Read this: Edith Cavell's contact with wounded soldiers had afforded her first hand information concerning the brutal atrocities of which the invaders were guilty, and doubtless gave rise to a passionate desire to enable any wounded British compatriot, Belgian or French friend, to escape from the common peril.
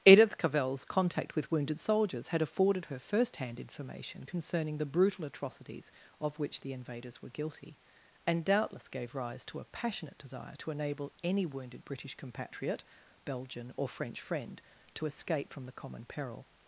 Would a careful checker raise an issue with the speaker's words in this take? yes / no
no